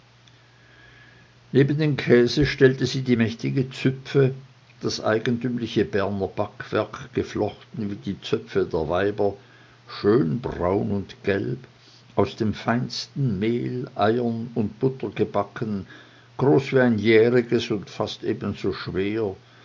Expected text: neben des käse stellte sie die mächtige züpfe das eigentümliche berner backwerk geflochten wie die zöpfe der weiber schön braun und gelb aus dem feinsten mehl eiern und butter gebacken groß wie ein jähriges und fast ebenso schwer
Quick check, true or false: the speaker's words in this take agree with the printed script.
false